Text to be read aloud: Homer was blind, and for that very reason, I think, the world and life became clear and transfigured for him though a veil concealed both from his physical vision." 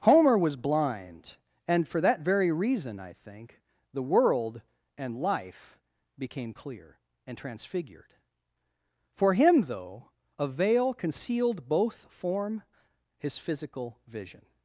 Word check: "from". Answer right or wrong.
wrong